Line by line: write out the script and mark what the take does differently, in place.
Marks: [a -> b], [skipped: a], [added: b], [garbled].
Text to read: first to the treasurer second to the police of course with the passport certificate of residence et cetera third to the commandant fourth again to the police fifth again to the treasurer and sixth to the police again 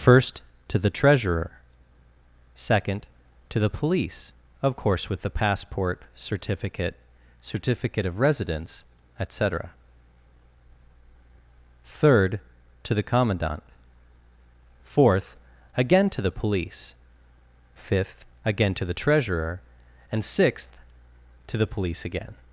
first to the treasurer second to the police of course with the passport certificate [added: certificate] of residence et cetera third to the commandant fourth again to the police fifth again to the treasurer and sixth to the police again